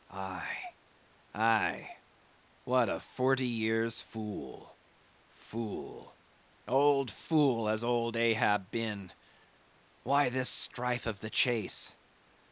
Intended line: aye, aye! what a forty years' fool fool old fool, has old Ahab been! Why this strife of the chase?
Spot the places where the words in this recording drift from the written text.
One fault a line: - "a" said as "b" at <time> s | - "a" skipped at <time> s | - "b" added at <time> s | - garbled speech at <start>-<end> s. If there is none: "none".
none